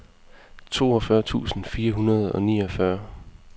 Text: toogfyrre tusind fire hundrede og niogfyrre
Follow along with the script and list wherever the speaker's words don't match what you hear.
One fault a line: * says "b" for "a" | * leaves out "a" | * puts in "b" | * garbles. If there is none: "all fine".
all fine